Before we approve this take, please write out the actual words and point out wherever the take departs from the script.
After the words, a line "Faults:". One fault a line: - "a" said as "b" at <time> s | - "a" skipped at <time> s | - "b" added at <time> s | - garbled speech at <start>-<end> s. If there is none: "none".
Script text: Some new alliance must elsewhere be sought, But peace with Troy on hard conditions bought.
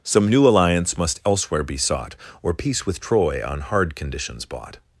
Some new alliance must elsewhere be sought, Or peace with Troy on hard conditions bought.
Faults:
- "But" said as "Or" at 2.4 s